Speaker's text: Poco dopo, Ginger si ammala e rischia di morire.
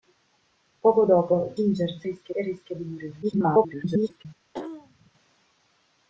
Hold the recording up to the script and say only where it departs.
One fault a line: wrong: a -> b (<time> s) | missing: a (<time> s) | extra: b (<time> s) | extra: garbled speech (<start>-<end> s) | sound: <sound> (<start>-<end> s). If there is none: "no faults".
wrong: ammala -> rischia (2.0 s)
extra: garbled speech (3.2-4.3 s)
sound: throat clearing (4.5-5.1 s)